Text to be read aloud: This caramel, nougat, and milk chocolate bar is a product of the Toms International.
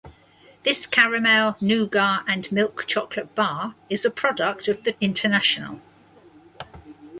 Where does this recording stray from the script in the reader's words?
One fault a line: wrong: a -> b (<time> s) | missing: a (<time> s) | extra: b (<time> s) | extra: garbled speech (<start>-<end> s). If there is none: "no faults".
missing: Toms (4.9 s)